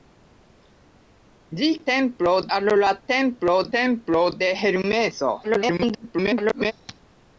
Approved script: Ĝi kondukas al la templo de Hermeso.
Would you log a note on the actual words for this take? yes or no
yes